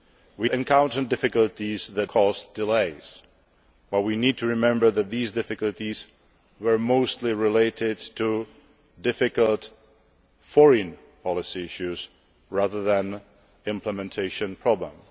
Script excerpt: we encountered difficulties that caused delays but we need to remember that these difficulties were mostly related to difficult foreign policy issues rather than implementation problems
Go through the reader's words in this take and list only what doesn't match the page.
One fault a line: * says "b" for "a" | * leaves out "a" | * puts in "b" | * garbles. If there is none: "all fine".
all fine